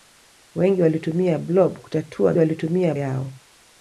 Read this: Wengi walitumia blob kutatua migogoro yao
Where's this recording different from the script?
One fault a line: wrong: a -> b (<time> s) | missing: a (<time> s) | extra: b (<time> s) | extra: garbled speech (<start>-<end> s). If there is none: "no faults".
wrong: migogoro -> walitumia (2.4 s)